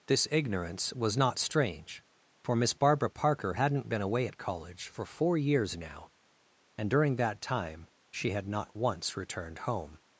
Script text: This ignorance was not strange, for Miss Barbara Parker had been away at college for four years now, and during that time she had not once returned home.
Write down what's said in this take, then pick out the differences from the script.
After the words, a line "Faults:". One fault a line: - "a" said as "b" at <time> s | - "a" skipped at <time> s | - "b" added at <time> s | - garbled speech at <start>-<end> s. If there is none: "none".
This ignorance was not strange, for Miss Barbara Parker hadn't been away at college for four years now, and during that time she had not once returned home.
Faults:
- "had" said as "hadn't" at 3.5 s